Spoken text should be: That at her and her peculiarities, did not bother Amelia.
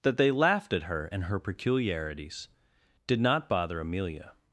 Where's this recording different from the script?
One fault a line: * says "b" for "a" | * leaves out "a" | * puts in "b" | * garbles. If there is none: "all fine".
* puts in "they laughed"